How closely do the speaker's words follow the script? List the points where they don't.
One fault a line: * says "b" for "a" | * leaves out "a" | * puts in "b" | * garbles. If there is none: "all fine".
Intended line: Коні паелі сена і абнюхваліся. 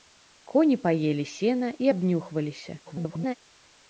* garbles